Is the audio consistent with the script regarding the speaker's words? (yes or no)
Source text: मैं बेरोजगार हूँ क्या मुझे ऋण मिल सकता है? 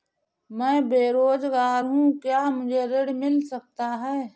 yes